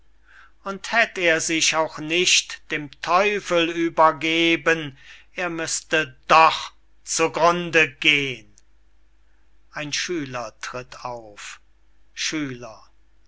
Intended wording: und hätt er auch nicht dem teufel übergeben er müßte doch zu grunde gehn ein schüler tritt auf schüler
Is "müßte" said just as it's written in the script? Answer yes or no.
yes